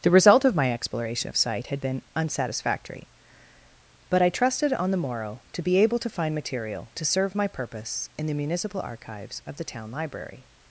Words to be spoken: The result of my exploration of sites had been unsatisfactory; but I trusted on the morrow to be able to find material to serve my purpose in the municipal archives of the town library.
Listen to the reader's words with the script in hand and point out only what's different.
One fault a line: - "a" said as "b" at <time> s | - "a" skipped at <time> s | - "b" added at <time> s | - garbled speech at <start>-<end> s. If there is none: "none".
- "sites" said as "site" at 1.4 s